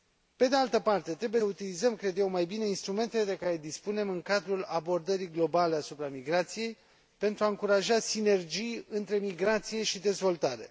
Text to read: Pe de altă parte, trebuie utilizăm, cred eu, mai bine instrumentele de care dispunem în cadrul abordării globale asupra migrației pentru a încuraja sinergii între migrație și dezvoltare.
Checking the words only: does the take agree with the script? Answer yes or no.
yes